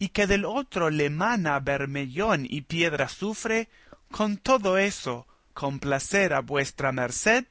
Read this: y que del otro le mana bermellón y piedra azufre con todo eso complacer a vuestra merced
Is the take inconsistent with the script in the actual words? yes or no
no